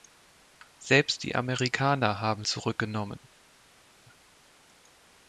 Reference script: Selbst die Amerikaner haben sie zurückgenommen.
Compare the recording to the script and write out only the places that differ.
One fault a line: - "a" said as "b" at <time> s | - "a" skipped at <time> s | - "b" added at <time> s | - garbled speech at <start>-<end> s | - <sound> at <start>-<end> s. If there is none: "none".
- "sie" skipped at 2.4 s